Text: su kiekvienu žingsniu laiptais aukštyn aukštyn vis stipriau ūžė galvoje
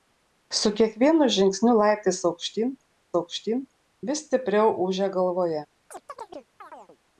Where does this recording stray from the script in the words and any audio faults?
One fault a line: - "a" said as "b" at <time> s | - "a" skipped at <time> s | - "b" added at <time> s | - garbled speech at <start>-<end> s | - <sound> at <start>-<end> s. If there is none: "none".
- chirp at 5.9-7.0 s